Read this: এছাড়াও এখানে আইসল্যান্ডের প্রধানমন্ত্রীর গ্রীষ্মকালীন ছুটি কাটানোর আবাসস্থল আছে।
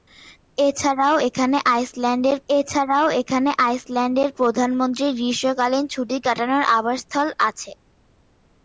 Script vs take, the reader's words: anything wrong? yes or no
yes